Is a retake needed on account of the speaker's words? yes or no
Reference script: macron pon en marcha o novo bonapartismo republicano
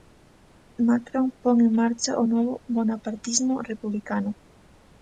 no